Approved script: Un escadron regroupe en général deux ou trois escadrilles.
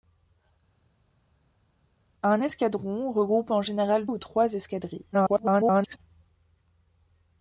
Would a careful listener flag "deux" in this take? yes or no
yes